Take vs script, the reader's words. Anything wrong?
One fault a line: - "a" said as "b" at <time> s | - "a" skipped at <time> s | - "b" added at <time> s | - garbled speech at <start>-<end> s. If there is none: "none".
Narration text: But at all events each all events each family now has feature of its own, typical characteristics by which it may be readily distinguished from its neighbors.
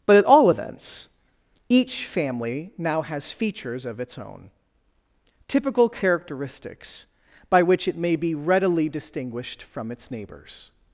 - "all events each" skipped at 2.1 s
- "feature" said as "features" at 3.3 s